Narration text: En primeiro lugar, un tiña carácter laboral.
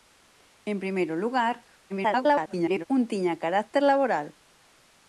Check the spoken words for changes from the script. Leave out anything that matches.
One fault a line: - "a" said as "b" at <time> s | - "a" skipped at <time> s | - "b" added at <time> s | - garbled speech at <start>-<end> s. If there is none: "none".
- garbled speech at 1.9-2.8 s